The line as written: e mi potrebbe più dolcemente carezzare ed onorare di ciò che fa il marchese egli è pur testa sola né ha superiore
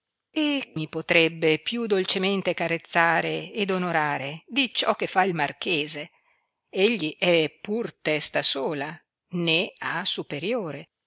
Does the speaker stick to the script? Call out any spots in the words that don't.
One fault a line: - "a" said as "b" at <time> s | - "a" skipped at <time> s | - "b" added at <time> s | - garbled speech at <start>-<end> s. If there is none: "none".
none